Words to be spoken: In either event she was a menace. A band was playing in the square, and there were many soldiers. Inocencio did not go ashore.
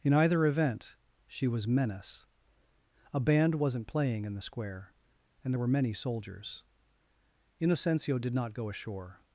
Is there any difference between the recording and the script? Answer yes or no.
yes